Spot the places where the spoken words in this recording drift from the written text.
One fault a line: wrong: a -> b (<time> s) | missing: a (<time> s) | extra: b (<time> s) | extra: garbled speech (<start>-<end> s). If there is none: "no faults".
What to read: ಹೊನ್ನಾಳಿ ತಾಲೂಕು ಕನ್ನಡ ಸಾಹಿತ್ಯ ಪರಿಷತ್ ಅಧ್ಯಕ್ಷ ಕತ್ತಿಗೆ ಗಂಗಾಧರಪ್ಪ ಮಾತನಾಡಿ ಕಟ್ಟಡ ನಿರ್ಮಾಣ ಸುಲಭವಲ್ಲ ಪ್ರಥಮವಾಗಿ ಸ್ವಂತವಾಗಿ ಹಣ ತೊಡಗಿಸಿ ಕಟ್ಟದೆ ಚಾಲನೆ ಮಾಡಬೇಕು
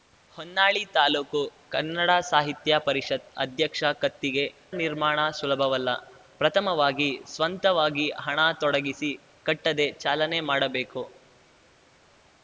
missing: ಗಂಗಾಧರಪ್ಪ ಮಾತನಾಡಿ ಕಟ್ಟಡ (4.4 s)